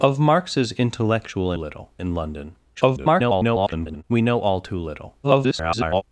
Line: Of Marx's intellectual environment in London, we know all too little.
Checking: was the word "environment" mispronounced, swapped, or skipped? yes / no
yes